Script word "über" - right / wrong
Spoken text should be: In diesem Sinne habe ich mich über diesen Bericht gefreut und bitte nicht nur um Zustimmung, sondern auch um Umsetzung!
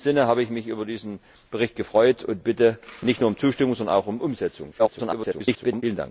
right